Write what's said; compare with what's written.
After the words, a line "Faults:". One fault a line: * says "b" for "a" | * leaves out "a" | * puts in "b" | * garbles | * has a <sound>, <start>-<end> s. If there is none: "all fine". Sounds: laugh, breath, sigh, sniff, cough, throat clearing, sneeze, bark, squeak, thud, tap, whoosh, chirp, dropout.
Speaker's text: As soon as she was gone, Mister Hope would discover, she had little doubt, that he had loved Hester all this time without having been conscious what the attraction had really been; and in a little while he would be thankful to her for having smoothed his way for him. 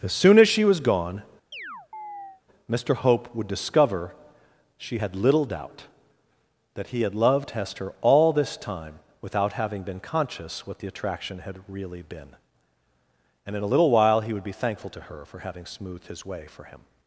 As soon as she was gone, Mister Hope would discover, she had little doubt, that he had loved Hester all this time without having been conscious what the attraction had really been; and in a little while he would be thankful to her for having smoothed his way for him.
Faults:
* has a chirp, 1.5-2.4 s